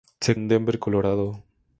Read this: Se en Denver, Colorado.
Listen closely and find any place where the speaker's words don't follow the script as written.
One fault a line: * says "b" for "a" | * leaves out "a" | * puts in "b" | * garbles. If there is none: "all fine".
all fine